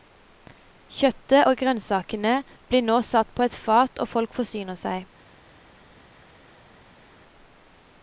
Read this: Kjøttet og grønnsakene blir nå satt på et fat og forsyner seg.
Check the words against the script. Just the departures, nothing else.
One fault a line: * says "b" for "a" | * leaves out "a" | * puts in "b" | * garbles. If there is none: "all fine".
* puts in "folk"